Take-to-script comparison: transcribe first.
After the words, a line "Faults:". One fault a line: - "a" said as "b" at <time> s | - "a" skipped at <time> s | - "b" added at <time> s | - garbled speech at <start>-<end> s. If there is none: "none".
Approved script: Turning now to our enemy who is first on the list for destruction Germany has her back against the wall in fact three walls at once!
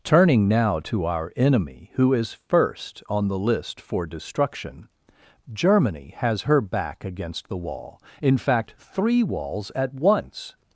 Turning now to our enemy who is first on the list for destruction Germany has her back against the wall in fact three walls at once!
Faults:
none